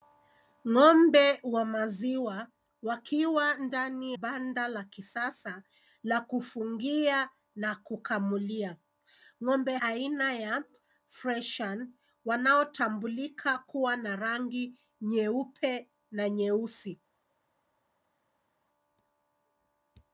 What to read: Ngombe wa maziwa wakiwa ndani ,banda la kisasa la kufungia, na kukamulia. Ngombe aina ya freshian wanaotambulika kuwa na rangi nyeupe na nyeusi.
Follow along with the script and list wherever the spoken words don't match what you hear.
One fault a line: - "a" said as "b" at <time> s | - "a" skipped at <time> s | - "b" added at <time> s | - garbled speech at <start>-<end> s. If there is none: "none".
none